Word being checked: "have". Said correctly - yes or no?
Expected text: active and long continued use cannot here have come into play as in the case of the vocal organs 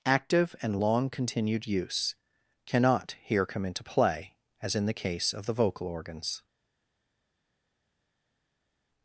no